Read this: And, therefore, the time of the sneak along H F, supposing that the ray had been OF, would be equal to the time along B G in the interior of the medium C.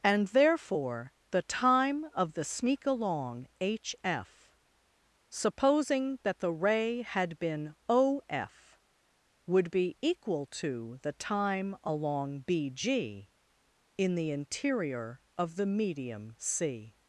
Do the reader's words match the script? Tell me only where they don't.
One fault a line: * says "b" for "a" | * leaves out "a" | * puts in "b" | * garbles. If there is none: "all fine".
all fine